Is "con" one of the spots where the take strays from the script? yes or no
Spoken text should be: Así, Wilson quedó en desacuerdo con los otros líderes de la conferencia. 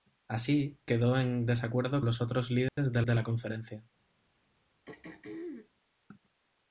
yes